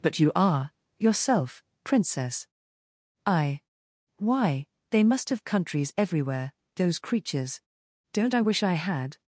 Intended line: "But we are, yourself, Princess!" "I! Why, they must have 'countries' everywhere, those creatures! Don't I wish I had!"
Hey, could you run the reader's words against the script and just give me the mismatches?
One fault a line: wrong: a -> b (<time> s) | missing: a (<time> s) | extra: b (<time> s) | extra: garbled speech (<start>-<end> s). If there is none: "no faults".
wrong: we -> you (0.2 s)